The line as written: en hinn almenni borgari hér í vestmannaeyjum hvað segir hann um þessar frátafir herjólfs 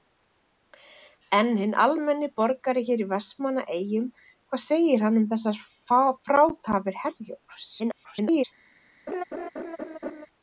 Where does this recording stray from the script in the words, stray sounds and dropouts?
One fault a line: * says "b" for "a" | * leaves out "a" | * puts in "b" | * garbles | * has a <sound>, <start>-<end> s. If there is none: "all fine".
* garbles
* has a laugh, 9.1-10.3 s